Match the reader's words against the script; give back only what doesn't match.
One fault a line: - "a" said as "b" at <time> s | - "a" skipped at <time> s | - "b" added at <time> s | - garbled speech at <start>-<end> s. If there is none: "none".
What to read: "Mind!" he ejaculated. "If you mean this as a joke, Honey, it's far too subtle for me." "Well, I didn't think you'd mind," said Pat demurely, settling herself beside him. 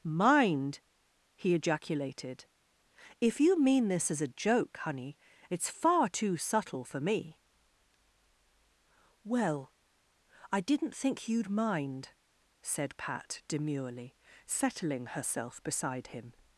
none